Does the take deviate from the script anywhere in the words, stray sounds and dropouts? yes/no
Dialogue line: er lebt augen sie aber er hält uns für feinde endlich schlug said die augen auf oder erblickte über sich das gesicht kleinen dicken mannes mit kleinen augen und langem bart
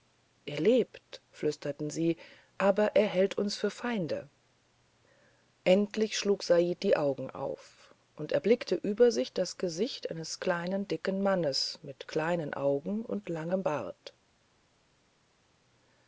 yes